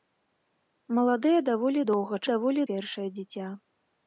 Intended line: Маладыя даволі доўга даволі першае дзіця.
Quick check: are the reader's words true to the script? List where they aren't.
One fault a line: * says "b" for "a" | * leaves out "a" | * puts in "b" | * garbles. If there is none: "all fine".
all fine